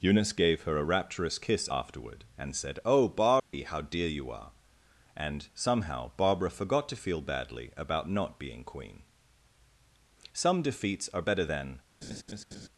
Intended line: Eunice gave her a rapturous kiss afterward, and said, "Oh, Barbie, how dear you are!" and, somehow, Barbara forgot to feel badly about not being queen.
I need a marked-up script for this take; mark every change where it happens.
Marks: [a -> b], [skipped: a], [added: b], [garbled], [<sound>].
Eunice gave her a rapturous kiss afterward, and said, "Oh, Barbie, [dropout] how dear you are!" and, somehow, Barbara forgot to feel badly about not being queen. [added: Some defeats are better than] [laugh]